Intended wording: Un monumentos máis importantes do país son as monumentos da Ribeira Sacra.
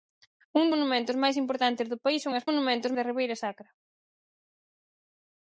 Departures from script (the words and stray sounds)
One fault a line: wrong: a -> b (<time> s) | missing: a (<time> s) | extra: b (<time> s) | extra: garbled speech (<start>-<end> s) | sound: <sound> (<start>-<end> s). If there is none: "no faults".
no faults